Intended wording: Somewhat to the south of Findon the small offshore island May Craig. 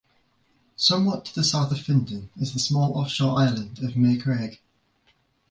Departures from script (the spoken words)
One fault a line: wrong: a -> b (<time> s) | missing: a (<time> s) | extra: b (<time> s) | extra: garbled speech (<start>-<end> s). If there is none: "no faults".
extra: is (2.4 s)
extra: of (3.8 s)